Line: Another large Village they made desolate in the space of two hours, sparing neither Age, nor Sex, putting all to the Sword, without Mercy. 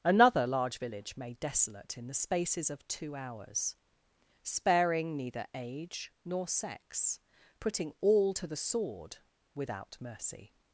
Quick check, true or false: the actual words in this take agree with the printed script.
false